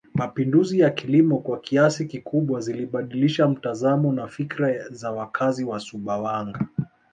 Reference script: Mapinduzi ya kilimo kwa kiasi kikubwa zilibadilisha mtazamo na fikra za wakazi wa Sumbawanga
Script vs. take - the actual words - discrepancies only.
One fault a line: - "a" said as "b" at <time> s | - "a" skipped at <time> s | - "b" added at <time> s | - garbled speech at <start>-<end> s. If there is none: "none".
none